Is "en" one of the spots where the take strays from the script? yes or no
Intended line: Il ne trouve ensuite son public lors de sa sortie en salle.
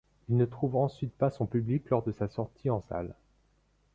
no